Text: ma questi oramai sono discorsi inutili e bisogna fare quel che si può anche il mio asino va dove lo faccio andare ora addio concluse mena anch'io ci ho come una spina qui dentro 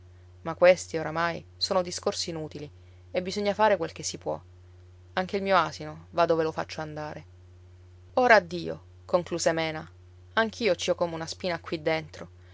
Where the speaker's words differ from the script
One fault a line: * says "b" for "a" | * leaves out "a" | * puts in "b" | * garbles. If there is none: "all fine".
all fine